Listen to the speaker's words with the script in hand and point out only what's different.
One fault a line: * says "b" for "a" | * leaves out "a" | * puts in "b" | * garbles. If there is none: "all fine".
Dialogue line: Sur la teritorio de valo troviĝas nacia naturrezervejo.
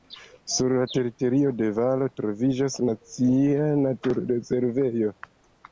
all fine